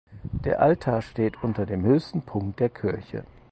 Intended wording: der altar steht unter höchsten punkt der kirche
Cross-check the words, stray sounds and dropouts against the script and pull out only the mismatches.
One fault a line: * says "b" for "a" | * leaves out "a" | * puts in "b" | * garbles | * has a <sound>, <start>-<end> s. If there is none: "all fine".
* puts in "dem"